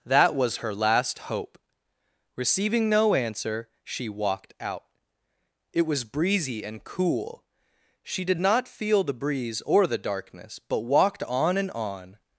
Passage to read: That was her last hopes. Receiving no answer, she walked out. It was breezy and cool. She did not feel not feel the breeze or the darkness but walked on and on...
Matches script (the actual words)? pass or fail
fail